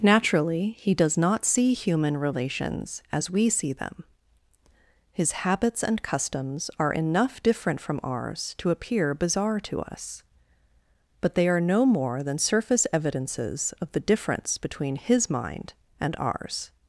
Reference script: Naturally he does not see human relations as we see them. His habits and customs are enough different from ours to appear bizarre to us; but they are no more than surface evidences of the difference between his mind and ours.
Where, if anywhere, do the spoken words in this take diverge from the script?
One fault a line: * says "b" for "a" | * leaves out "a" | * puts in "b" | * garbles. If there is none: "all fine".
all fine